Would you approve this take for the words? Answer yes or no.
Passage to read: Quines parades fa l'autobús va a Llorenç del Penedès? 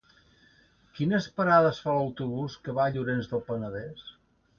no